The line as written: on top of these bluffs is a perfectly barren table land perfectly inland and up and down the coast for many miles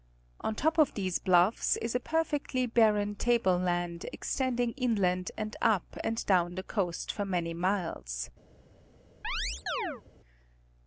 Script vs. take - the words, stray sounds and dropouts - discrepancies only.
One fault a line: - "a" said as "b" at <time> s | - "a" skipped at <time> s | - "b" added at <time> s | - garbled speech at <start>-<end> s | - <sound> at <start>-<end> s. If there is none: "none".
- "perfectly" said as "extending" at 4.1 s
- chirp at 9.2-10.0 s